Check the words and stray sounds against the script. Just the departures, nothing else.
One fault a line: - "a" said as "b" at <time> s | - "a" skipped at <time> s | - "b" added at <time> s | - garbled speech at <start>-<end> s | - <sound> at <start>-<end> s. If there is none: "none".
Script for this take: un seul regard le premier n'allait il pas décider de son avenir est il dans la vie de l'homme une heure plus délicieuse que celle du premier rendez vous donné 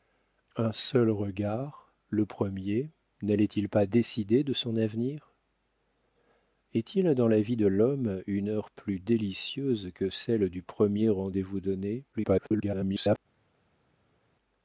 - garbled speech at 12.1-13.2 s